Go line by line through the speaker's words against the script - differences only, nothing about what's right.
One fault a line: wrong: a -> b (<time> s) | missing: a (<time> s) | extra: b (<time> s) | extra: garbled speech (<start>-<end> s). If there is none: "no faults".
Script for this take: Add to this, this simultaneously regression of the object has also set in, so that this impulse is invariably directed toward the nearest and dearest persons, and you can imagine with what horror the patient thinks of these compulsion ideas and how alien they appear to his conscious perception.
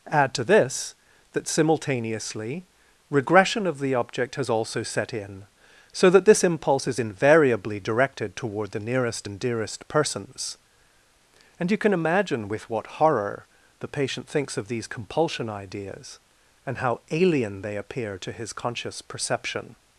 wrong: this -> that (1.3 s)